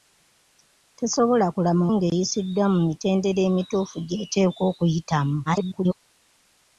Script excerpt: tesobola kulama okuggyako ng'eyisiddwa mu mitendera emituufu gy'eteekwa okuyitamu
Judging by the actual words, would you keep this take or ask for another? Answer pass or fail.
fail